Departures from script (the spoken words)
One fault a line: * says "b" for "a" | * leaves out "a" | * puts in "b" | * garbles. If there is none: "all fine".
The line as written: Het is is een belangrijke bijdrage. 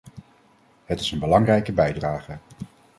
* leaves out "is"